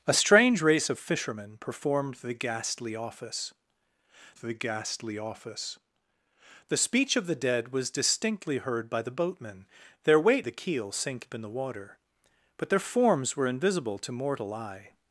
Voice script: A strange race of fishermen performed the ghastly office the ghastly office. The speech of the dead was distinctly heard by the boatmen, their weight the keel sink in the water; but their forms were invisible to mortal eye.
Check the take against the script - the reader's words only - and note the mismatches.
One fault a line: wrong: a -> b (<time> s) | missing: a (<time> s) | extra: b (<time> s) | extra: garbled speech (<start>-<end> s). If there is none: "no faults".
no faults